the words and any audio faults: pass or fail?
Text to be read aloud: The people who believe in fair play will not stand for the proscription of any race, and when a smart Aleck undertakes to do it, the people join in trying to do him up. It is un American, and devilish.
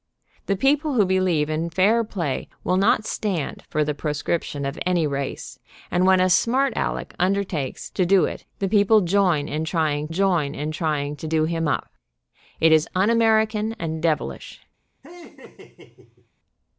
fail